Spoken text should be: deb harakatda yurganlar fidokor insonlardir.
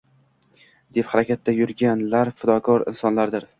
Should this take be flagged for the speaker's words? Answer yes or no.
no